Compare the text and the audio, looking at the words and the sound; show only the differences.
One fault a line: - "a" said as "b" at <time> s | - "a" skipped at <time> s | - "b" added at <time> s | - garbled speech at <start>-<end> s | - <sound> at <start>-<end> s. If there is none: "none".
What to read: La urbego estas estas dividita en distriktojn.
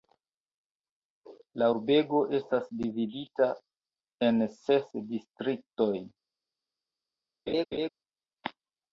- "estas" skipped at 2.7 s
- "ses" added at 4.6 s
- laugh at 7.5-7.9 s